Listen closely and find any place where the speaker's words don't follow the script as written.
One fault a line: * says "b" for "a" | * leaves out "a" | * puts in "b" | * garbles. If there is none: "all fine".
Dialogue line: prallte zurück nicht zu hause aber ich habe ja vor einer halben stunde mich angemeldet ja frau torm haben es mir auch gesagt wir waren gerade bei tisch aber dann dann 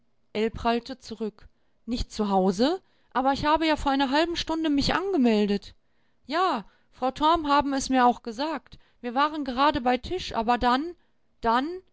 all fine